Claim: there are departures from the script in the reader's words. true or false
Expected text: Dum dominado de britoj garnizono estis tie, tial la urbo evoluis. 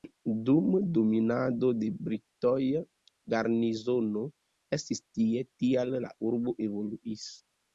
false